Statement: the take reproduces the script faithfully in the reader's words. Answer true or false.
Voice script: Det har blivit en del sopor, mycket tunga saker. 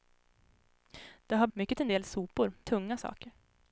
false